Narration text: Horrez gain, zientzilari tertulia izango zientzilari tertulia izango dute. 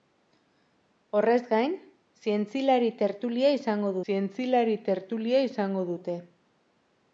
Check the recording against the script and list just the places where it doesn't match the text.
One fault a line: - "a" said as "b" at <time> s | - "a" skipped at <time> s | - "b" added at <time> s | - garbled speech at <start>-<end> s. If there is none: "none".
none